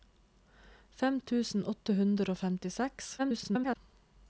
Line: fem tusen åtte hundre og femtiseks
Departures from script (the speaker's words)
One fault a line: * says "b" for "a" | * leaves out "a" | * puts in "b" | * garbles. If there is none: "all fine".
* garbles